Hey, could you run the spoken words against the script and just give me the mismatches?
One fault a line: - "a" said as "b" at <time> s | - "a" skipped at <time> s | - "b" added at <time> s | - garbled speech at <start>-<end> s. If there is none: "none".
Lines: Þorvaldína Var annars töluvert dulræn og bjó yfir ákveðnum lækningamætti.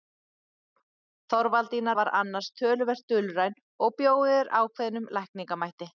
none